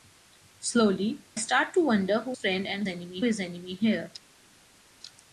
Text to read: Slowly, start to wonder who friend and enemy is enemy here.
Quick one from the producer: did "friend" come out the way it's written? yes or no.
yes